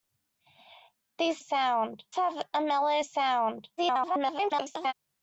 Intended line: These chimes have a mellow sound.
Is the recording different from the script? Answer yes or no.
yes